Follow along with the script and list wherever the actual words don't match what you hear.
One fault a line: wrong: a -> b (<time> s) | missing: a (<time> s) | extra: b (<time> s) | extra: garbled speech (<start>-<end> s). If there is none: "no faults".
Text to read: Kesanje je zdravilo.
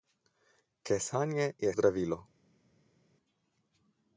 no faults